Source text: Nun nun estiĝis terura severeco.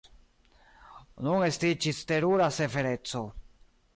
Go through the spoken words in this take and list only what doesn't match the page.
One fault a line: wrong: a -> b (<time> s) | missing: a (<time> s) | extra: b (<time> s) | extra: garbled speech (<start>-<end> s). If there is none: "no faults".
missing: nun (1.4 s)